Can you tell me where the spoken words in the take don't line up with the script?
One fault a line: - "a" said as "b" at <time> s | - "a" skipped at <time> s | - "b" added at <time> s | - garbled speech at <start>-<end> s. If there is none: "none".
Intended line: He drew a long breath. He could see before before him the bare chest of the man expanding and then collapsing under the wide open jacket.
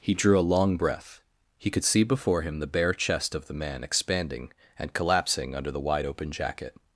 - "before" skipped at 2.4 s
- "then" skipped at 4.9 s